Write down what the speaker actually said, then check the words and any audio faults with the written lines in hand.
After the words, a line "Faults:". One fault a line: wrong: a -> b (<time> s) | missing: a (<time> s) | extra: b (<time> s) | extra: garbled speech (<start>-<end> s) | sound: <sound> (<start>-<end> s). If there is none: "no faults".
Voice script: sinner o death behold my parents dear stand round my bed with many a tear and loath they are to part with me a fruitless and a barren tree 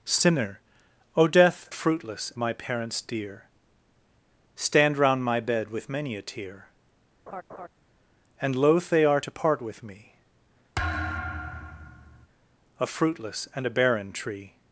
sinner o death fruitless my parents dear stand round my bed with many a tear and loath they are to part with me a fruitless and a barren tree
Faults:
wrong: behold -> fruitless (1.7 s)
sound: laugh (7.3-7.7 s)
sound: thud (10.8-12.3 s)